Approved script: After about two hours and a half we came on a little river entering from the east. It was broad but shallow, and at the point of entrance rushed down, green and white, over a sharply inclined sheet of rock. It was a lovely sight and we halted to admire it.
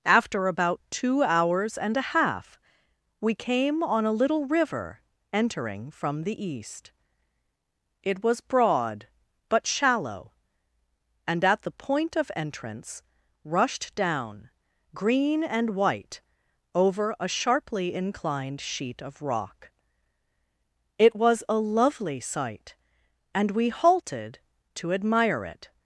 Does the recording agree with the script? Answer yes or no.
yes